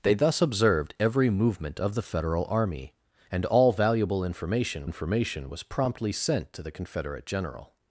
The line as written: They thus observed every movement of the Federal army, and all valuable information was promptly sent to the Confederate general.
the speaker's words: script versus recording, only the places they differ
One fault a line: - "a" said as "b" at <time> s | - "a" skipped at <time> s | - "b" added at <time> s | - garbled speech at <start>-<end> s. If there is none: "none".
- "information" added at 4.8 s